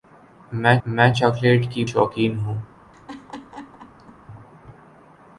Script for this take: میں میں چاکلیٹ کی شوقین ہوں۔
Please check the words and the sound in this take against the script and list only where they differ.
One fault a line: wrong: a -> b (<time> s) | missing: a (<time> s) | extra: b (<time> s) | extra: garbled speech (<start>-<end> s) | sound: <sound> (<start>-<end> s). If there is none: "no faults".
sound: laugh (2.9-4.2 s)